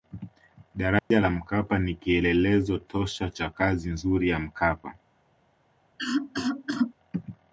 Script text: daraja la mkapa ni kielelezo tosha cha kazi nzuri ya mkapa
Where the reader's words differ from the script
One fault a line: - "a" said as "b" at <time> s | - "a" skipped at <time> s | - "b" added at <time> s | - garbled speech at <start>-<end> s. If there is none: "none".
none